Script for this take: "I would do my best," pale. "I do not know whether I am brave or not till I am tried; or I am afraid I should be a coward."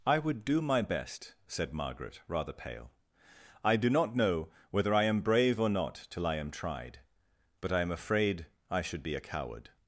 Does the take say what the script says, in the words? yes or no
no